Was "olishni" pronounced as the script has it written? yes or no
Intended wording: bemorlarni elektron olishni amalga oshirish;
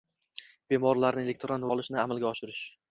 yes